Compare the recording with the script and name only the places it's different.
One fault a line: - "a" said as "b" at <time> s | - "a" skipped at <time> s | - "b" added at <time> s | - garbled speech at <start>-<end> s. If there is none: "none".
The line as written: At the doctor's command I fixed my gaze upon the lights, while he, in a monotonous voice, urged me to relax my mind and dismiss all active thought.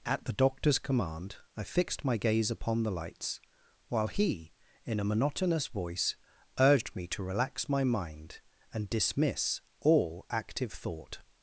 none